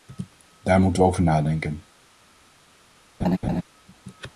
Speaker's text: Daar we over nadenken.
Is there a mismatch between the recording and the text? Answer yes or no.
yes